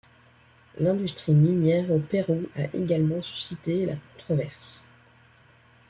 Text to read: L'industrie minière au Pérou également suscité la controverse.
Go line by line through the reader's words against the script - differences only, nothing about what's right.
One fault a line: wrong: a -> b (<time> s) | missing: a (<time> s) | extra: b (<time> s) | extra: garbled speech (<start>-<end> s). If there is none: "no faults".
extra: a (2.5 s)